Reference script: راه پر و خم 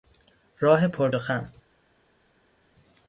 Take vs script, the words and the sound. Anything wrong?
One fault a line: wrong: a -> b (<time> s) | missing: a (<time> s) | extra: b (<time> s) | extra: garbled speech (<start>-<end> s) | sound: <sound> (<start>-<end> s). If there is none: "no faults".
no faults